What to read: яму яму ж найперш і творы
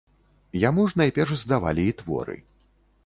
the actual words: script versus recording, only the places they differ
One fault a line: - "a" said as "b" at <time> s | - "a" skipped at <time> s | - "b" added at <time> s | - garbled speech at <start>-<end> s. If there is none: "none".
- "яму" skipped at 0.8 s
- "здавалі" added at 1.4 s